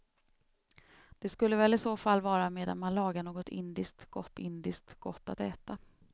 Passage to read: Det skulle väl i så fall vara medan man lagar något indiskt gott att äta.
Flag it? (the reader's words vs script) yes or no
yes